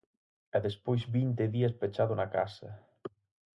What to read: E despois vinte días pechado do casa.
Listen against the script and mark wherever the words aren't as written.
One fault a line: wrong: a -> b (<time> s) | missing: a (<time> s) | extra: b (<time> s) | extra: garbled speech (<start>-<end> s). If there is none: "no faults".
wrong: do -> na (2.1 s)